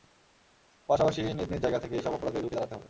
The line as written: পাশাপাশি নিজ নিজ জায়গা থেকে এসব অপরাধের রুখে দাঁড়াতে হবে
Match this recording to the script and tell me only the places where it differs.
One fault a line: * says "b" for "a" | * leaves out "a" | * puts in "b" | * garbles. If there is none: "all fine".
all fine